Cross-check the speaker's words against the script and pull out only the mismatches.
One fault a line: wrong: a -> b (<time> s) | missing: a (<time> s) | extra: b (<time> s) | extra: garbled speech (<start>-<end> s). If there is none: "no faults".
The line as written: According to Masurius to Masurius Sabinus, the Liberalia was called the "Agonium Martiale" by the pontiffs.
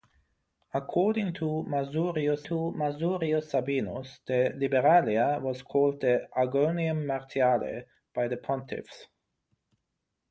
no faults